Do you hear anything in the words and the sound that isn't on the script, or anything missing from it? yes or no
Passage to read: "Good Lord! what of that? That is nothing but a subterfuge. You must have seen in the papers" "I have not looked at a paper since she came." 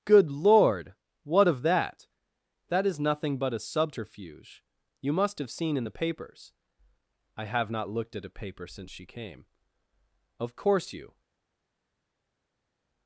yes